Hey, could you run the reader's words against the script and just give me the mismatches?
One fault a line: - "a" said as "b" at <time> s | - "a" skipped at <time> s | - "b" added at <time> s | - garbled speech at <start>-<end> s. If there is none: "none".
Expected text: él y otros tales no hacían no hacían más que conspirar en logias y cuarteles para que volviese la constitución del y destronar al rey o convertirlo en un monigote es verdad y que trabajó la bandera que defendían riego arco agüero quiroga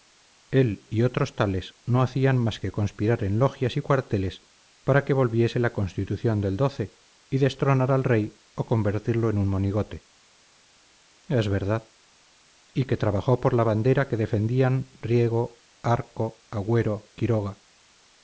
- "no hacían" skipped at 2.4 s
- "por" added at 13.4 s